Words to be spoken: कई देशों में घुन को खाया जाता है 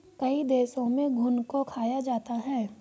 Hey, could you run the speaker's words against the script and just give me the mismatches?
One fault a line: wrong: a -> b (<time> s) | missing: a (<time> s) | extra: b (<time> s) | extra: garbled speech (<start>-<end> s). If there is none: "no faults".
no faults